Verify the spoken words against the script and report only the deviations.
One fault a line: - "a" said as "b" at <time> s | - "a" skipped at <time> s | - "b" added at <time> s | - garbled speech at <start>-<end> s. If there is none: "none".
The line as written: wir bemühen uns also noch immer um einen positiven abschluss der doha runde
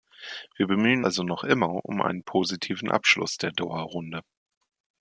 - "uns" skipped at 1.1 s